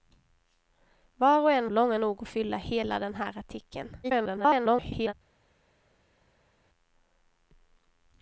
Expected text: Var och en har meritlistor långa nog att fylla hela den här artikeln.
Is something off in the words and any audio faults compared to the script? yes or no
yes